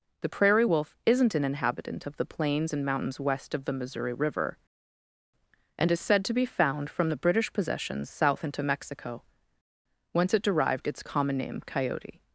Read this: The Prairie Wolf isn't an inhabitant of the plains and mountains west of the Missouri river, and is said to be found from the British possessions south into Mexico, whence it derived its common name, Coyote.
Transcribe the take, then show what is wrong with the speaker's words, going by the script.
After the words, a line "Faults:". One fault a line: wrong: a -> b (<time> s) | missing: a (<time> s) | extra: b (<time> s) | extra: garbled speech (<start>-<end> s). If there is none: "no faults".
The Prairie Wolf isn't an inhabitant of the plains and mountains west of the Missouri river, and is said to be found from the British possessions south into Mexico, whence it derived its common name, Coyote.
Faults:
no faults